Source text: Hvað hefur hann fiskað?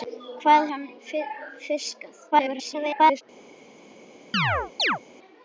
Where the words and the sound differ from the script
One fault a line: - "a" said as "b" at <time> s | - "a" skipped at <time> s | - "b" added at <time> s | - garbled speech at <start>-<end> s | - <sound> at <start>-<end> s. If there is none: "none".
- "hefur" skipped at 0.7 s
- garbled speech at 2.3-3.2 s
- chirp at 4.3-5.0 s